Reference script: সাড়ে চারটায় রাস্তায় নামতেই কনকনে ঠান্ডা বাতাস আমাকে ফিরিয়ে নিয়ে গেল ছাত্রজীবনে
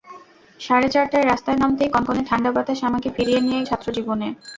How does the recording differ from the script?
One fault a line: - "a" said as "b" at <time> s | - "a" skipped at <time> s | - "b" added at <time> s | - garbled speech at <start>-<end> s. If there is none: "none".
- "গেল" skipped at 3.6 s